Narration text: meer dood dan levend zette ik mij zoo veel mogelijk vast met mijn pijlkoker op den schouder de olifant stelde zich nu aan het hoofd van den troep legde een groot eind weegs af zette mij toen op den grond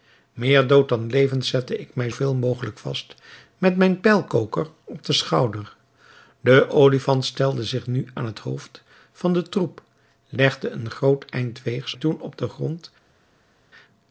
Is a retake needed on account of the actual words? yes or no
yes